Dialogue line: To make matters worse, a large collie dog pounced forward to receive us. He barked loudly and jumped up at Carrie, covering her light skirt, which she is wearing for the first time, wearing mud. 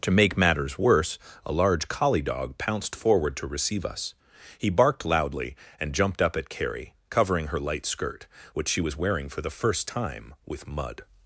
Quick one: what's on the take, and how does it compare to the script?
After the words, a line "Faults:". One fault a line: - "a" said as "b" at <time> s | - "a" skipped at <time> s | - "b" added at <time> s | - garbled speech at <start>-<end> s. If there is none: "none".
To make matters worse, a large collie dog pounced forward to receive us. He barked loudly and jumped up at Carrie, covering her light skirt, which she was wearing for the first time, with mud.
Faults:
- "is" said as "was" at 8.8 s
- "wearing" said as "with" at 10.4 s